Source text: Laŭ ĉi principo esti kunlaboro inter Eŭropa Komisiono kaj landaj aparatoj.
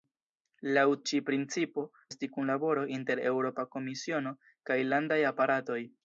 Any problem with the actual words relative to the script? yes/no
no